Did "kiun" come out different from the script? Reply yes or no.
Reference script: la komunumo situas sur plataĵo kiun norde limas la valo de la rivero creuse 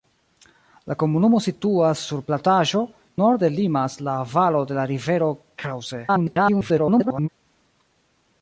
yes